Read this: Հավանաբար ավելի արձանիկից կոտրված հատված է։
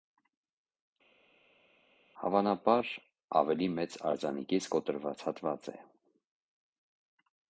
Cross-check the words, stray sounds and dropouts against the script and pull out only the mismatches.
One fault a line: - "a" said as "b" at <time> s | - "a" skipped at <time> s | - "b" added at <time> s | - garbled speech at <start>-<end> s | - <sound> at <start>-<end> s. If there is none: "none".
- "մեծ" added at 3.8 s